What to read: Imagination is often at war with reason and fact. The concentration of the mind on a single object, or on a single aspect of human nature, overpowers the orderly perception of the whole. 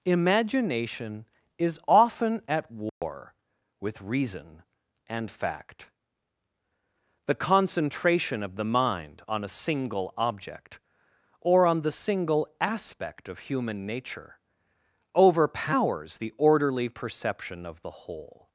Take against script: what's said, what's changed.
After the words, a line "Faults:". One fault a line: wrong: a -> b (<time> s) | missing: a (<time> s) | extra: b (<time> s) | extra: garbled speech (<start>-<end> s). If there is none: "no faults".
Imagination is often at war with reason and fact. The concentration of the mind on a single object, or on the single aspect of human nature, overpowers the orderly perception of the whole.
Faults:
wrong: a -> the (11.8 s)